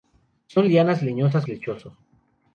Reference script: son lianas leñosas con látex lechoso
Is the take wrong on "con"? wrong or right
wrong